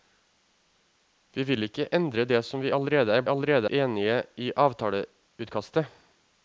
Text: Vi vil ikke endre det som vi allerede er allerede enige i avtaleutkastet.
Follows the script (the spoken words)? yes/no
yes